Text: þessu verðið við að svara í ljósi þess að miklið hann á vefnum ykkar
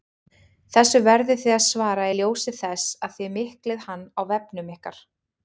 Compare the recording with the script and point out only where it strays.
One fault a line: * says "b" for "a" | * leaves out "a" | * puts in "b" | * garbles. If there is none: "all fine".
* says "þið" for "við"
* puts in "þið"